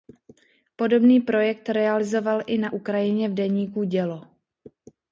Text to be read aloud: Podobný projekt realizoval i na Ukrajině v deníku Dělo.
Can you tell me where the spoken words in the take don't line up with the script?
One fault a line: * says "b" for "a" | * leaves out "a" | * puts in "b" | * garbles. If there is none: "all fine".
all fine